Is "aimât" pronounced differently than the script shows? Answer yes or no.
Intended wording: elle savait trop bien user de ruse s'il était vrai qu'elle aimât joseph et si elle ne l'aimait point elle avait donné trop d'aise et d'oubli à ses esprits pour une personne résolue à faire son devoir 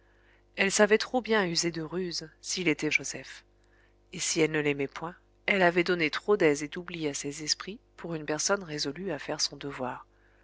yes